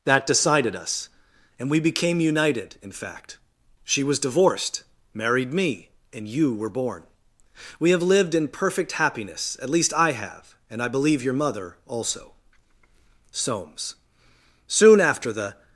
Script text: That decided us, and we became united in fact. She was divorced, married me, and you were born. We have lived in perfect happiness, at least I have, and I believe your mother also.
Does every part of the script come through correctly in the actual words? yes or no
no